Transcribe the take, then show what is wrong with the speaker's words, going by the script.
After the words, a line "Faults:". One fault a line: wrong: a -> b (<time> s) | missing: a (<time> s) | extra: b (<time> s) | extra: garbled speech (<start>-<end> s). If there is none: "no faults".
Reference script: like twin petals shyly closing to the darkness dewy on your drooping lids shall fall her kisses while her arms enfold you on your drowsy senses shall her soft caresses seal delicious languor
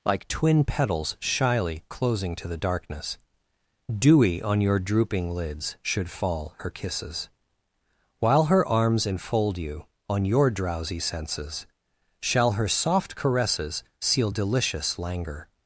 like twin petals shyly closing to the darkness dewy on your drooping lids should fall her kisses while her arms enfold you on your drowsy senses shall her soft caresses seal delicious languor
Faults:
wrong: shall -> should (5.8 s)